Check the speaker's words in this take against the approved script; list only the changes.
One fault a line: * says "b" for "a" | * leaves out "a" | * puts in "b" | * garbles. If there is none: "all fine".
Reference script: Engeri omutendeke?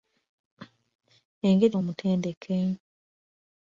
all fine